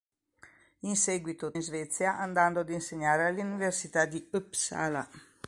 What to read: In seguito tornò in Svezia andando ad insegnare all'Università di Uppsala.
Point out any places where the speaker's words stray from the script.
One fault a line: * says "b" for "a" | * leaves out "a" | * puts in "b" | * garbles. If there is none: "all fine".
* leaves out "tornò"